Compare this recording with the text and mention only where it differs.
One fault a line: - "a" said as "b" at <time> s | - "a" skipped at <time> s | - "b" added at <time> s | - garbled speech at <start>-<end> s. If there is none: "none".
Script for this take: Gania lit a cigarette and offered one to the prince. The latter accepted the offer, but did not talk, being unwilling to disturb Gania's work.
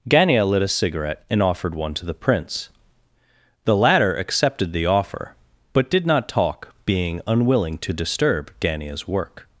none